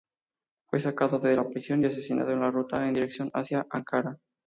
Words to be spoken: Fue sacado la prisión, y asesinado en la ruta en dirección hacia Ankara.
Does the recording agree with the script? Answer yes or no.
no